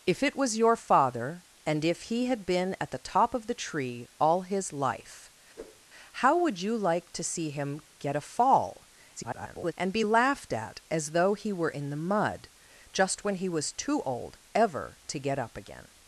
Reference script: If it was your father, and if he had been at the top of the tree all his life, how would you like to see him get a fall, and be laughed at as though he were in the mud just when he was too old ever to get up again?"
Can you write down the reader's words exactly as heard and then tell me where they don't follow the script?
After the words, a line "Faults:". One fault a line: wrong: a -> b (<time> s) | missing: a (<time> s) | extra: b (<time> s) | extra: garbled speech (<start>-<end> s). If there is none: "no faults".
If it was your father, and if he had been at the top of the tree all his life, how would you like to see him get a fall, [garbled] and be laughed at as though he were in the mud just when he was too old ever to get up again?"
Faults:
extra: garbled speech (9.2-9.7 s)